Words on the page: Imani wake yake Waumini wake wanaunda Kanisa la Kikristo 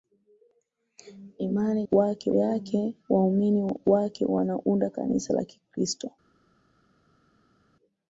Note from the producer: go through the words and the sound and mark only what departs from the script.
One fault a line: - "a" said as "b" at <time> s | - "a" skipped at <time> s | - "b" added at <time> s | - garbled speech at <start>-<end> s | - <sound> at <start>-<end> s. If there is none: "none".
none